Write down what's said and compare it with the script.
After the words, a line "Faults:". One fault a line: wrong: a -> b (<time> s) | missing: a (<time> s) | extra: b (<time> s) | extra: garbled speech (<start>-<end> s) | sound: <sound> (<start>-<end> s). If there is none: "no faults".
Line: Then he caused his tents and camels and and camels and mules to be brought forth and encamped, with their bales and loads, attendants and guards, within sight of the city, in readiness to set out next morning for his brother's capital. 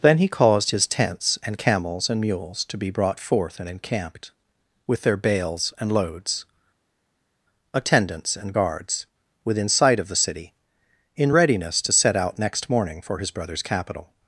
Then he caused his tents and camels and mules to be brought forth and encamped, with their bales and loads, attendants and guards, within sight of the city, in readiness to set out next morning for his brother's capital.
Faults:
missing: and camels and (2.2 s)